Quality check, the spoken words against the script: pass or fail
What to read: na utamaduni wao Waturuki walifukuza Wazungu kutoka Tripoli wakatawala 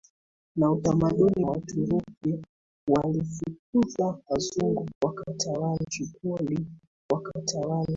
fail